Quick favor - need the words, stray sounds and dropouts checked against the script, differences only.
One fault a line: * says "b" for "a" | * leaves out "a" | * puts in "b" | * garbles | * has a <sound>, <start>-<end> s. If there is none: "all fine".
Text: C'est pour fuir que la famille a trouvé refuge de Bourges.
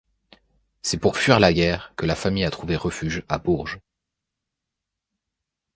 * puts in "la guerre"
* says "à" for "de"